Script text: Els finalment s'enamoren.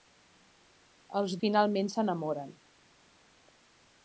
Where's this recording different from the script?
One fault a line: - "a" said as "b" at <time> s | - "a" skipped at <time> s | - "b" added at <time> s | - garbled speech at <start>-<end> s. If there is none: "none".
none